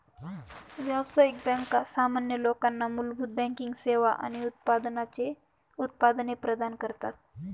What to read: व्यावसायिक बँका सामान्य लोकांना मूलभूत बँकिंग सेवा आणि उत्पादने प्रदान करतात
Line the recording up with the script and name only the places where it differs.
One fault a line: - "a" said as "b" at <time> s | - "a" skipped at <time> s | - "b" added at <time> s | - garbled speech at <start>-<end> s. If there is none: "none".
none